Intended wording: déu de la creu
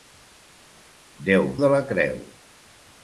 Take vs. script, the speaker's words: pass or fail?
pass